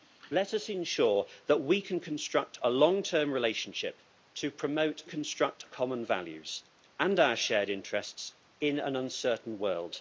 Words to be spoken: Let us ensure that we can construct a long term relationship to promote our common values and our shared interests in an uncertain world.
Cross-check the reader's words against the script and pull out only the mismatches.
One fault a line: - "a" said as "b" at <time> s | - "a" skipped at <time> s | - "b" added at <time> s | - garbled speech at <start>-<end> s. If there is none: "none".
- "our" said as "construct" at 5.1 s